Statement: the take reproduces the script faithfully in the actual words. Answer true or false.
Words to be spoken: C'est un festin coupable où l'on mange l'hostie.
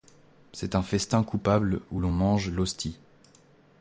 true